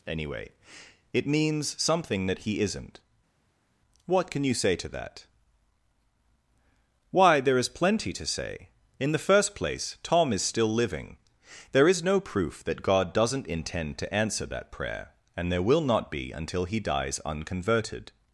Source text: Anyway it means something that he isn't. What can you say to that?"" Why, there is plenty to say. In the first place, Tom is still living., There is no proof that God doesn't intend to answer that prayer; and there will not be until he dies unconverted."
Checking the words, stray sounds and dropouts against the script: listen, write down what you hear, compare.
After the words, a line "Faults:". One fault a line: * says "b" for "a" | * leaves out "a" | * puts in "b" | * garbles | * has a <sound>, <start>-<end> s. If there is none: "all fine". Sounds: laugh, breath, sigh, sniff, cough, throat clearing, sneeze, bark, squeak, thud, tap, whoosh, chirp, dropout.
Anyway it means something that he isn't. What can you say to that?"" Why, there is plenty to say. In the first place, Tom is still living., There is no proof that God doesn't intend to answer that prayer; and there will not be until he dies unconverted."
Faults:
all fine